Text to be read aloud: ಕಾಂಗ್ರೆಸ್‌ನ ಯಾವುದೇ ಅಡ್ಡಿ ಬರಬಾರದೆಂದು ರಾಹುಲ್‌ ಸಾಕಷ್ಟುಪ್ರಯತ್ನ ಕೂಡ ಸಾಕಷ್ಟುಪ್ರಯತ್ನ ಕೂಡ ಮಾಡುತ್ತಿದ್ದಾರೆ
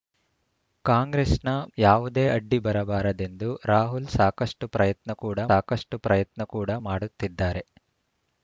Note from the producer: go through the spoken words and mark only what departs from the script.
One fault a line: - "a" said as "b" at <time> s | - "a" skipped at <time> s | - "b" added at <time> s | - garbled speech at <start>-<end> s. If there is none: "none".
none